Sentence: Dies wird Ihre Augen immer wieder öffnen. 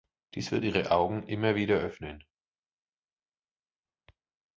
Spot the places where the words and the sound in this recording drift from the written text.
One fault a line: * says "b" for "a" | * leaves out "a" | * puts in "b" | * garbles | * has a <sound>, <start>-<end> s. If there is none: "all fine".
all fine